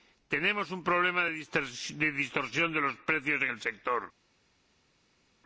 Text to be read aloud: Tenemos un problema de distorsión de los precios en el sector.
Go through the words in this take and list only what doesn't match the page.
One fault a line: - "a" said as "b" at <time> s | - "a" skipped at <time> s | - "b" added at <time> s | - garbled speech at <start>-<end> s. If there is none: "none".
none